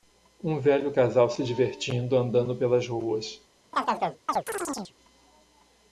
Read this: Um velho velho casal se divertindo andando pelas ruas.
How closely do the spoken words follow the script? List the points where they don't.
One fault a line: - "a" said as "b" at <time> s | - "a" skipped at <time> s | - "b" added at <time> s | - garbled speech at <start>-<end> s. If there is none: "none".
- "velho" skipped at 0.9 s